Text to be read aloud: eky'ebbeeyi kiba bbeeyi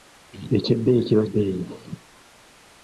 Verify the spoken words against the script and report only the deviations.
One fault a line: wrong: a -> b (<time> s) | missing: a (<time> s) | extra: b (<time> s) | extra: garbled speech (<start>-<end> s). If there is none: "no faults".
no faults